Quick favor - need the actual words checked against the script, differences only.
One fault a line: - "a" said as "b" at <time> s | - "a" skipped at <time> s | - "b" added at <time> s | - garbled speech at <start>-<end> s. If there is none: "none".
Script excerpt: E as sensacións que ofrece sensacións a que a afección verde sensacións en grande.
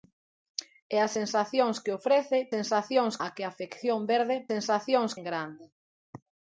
none